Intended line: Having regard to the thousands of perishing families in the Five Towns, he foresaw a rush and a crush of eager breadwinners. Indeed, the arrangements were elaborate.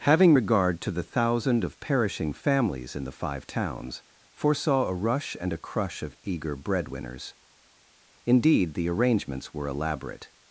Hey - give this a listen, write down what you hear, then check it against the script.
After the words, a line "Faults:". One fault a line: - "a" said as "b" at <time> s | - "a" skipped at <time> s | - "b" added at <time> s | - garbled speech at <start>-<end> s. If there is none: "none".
Having regard to the thousand of perishing families in the Five Towns, foresaw a rush and a crush of eager breadwinners. Indeed, the arrangements were elaborate.
Faults:
- "thousands" said as "thousand" at 1.0 s
- "he" skipped at 4.0 s